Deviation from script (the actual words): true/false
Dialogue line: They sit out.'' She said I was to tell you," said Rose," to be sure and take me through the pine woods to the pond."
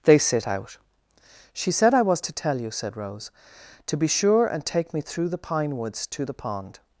false